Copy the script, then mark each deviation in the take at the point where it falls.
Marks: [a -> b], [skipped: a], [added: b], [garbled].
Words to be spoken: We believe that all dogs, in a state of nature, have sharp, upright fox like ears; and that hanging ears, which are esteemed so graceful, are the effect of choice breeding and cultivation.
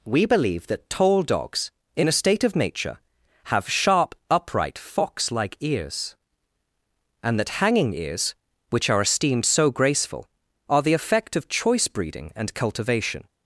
We believe that [all -> tall] dogs, in a state of nature, have sharp, upright fox like ears; and that hanging ears, which are esteemed so graceful, are the effect of choice breeding and cultivation.